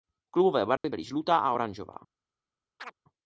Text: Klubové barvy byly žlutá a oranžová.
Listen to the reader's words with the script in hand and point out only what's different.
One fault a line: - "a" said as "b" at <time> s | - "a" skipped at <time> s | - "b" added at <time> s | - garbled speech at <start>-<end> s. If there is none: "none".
none